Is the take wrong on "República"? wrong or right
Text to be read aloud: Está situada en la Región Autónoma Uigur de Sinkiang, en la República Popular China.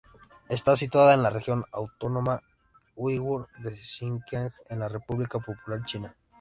right